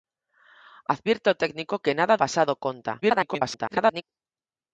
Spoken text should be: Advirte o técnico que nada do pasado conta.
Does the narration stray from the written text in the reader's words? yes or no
yes